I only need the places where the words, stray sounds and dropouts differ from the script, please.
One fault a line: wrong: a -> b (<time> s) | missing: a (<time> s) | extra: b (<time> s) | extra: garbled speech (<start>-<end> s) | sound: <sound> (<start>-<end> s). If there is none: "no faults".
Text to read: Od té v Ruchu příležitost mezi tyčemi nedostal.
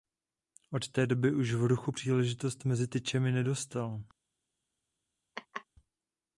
extra: doby už (1.1 s)
sound: laugh (5.4-5.7 s)